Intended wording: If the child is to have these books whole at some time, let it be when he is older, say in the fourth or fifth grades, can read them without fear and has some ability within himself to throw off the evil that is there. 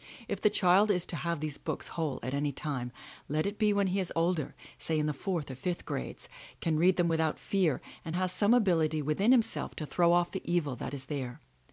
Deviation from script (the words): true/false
true